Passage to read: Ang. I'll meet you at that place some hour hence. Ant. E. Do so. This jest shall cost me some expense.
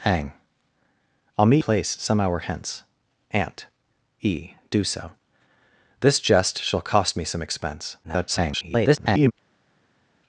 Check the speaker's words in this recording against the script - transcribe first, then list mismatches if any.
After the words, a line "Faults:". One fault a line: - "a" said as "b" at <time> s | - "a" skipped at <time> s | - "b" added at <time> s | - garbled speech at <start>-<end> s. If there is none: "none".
Ang. I'll meet place some hour hence. Ant. E. Do so. This jest shall cost me some expense. [garbled]
Faults:
- "you at that" skipped at 1.6 s
- garbled speech at 8.0-9.3 s